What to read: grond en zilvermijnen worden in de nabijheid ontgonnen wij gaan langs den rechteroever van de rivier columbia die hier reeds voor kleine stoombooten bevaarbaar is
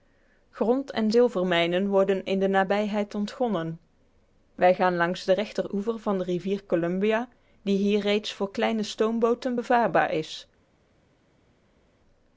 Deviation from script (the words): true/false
false